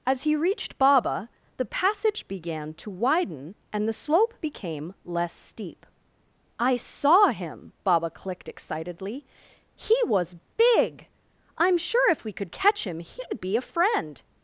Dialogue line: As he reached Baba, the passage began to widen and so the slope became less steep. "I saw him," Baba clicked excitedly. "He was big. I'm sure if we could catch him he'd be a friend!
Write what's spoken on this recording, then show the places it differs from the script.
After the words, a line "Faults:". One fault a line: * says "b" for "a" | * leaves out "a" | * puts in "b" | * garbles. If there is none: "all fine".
As he reached Baba, the passage began to widen and the slope became less steep. "I saw him," Baba clicked excitedly. "He was big. I'm sure if we could catch him he'd be a friend!
Faults:
* leaves out "so"